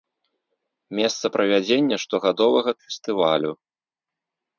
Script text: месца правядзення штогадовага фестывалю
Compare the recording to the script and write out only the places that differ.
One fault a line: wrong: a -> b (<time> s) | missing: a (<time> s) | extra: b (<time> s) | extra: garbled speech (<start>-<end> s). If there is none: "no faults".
no faults